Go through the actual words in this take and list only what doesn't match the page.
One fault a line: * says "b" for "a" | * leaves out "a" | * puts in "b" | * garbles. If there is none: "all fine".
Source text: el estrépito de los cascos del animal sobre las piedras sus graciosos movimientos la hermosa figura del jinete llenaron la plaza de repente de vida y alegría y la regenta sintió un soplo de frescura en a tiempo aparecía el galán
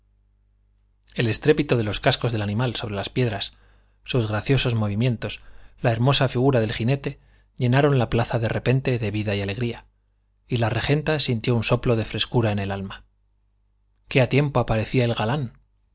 * puts in "el alma qué"